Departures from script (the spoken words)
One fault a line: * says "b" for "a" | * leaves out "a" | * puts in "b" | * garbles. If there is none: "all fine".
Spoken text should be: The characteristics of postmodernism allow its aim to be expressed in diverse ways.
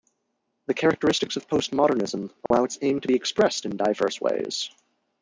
all fine